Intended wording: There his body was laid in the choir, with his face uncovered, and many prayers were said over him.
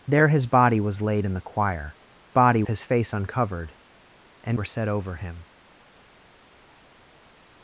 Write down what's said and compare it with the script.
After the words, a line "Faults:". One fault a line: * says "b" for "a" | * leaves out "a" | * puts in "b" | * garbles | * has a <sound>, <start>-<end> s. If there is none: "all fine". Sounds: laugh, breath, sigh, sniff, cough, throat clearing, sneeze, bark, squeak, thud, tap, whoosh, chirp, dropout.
There his body was laid in the choir, body his face uncovered, and were said over him.
Faults:
* says "body" for "with"
* leaves out "many prayers"